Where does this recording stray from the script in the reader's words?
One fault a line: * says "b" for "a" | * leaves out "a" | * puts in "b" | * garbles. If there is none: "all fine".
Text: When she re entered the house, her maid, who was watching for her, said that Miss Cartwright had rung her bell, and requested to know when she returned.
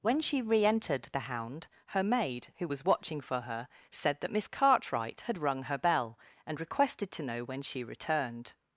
* says "hound" for "house"